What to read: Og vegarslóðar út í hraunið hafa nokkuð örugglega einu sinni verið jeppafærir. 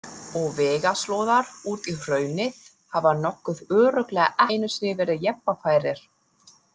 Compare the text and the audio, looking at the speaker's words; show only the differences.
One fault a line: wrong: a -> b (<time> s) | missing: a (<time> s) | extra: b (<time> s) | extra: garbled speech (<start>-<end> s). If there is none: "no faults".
no faults